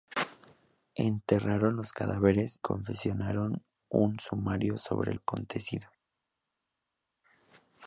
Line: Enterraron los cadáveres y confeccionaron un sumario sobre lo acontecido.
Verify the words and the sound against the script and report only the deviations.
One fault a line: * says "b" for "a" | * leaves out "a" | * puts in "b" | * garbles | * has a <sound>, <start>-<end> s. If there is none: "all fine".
* leaves out "y"
* leaves out "lo"